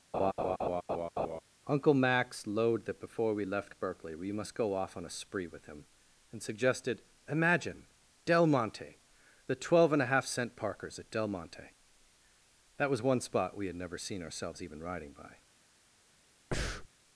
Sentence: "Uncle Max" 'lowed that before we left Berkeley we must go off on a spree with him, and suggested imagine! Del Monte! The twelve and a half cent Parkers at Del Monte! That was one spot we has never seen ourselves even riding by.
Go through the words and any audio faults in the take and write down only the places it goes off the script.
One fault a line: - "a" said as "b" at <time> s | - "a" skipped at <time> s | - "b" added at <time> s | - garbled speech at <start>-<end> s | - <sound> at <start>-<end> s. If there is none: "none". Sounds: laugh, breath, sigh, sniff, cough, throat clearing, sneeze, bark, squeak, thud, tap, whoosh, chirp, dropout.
- laugh at 0.1-1.4 s
- "has" said as "had" at 13.7 s
- breath at 16.5-16.9 s